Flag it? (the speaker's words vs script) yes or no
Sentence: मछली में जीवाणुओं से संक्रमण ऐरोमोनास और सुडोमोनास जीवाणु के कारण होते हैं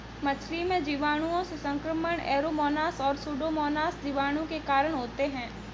no